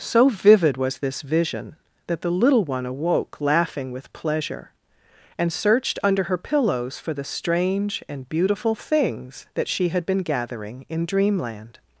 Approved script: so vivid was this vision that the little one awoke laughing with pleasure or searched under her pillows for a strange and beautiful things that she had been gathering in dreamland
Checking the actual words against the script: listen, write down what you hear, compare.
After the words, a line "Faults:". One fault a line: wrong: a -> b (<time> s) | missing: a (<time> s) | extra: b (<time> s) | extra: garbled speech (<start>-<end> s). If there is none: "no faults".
so vivid was this vision that the little one awoke laughing with pleasure and searched under her pillows for the strange and beautiful things that she had been gathering in dreamland
Faults:
wrong: or -> and (5.4 s)
wrong: a -> the (7.1 s)